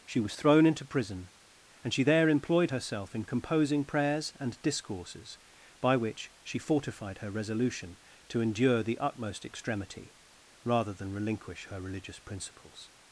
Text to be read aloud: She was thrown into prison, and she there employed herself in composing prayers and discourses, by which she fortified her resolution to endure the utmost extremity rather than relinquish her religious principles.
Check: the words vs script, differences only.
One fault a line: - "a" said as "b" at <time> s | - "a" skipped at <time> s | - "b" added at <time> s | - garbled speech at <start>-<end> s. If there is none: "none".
none